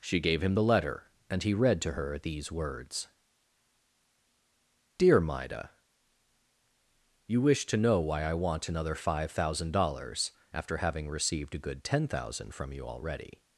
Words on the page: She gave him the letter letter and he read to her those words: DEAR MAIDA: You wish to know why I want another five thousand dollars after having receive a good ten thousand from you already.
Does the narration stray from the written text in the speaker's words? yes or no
yes